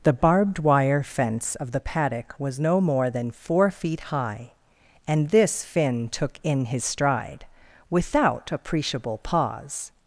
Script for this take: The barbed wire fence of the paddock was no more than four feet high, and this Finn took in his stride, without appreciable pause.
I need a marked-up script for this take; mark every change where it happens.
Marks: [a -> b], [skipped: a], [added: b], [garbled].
The barbed wire fence of the paddock was no more than four feet high, and this Finn took in his stride, without appreciable pause.